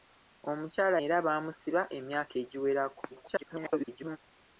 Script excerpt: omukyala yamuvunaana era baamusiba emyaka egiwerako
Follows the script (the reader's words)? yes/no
no